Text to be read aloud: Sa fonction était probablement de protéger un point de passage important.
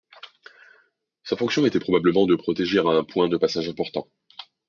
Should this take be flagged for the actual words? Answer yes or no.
no